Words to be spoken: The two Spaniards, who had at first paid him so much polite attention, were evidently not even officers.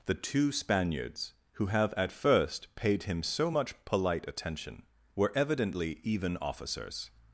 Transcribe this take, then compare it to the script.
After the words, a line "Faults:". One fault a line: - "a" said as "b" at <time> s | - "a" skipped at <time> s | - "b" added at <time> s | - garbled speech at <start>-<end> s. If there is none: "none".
The two Spaniards, who have at first paid him so much polite attention, were evidently even officers.
Faults:
- "had" said as "have" at 1.7 s
- "not" skipped at 6.0 s